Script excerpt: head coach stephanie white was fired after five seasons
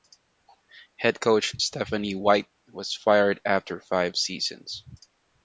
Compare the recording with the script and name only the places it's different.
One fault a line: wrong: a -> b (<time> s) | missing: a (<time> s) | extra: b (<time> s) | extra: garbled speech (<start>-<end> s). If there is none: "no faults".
no faults